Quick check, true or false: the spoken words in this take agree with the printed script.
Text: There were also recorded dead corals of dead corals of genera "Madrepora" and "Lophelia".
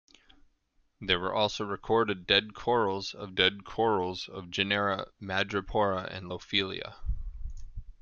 true